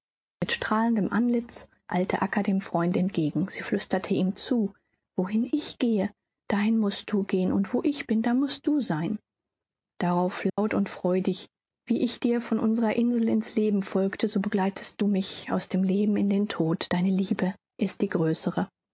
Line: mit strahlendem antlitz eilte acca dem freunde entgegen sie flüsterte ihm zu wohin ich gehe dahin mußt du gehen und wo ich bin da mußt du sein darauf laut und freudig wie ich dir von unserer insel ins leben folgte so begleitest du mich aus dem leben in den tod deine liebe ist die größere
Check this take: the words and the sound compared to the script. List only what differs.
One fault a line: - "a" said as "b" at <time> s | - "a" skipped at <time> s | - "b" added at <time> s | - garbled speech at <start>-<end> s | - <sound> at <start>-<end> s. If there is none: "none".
- dropout at 10.5-10.6 s